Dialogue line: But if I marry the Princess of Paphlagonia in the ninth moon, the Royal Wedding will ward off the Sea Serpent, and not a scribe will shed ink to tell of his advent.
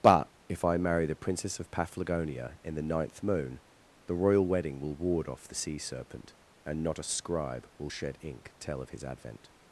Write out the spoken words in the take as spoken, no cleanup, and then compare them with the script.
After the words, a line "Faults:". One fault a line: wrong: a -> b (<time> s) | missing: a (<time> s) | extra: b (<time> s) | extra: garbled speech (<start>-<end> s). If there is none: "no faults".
But if I marry the Princess of Paphlagonia in the ninth moon, the Royal Wedding will ward off the Sea Serpent, and not a scribe will shed ink tell of his advent.
Faults:
missing: to (8.5 s)